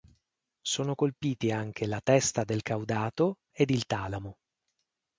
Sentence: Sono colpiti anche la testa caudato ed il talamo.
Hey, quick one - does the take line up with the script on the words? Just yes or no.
no